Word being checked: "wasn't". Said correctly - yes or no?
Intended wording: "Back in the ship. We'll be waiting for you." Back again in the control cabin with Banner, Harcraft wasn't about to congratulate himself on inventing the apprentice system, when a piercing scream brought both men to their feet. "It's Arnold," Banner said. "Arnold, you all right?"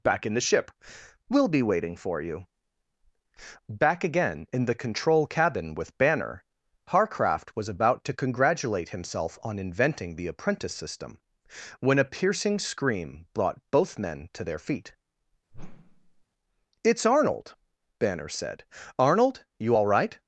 no